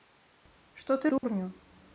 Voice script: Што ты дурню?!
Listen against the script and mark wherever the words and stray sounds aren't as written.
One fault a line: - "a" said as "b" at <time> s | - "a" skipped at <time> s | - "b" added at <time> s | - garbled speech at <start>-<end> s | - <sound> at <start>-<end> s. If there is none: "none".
- dropout at 1.2-1.2 s